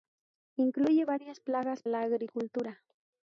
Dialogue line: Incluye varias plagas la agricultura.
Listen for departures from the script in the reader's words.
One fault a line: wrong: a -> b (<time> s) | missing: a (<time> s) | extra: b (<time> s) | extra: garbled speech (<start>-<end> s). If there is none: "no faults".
no faults